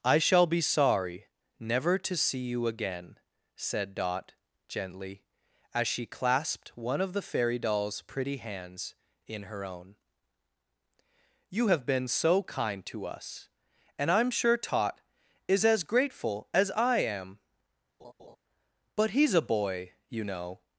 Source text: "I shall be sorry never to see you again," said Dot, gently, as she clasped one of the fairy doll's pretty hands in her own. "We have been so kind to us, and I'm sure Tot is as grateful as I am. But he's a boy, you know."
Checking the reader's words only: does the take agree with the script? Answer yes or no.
no